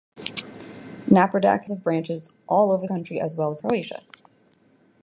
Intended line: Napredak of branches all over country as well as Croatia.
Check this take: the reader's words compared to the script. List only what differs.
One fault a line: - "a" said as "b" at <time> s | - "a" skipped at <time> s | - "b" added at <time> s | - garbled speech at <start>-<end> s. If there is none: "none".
none